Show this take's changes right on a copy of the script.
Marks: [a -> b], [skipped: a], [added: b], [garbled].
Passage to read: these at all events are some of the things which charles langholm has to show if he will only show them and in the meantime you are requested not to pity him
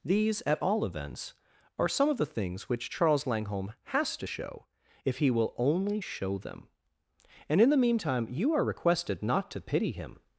these at all events are some of the things which charles langholm has to show if he will only show them and in the meantime you are requested not to pity him